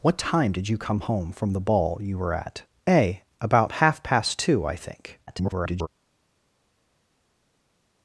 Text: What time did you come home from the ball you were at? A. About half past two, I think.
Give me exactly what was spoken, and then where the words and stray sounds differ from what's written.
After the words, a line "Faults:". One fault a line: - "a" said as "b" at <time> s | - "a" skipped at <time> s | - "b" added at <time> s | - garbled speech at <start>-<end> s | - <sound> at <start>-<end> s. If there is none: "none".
What time did you come home from the ball you were at? A. About half past two, I think. [garbled]
Faults:
- garbled speech at 5.3-5.9 s